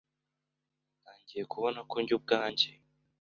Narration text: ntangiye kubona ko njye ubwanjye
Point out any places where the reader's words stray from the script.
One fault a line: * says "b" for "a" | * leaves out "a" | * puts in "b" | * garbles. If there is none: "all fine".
all fine